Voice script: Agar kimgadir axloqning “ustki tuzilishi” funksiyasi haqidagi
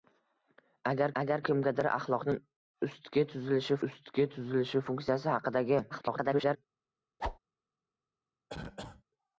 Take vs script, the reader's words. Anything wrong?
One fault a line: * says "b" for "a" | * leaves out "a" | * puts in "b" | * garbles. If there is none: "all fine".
* puts in "agar"
* puts in "ustki tuzilishi"
* garbles